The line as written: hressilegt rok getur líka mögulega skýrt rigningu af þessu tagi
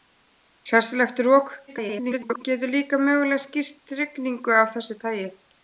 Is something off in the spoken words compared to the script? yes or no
yes